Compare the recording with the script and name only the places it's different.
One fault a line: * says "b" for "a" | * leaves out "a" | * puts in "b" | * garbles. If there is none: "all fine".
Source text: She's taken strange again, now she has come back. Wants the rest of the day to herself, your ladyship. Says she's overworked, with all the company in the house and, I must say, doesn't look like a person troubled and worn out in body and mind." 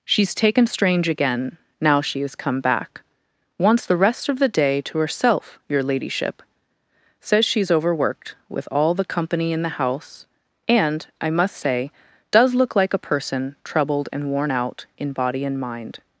* says "does" for "doesn't"